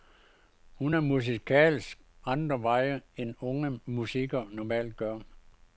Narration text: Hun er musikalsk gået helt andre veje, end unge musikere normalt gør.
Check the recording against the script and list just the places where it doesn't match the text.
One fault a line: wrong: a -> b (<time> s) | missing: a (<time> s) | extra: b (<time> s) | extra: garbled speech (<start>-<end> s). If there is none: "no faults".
missing: gået helt (2.0 s)